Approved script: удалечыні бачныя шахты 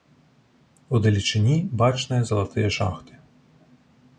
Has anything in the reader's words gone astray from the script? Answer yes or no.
yes